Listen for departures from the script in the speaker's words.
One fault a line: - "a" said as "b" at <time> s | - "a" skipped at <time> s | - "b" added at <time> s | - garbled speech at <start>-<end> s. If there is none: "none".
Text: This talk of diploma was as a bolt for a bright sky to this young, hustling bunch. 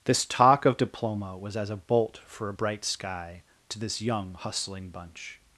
none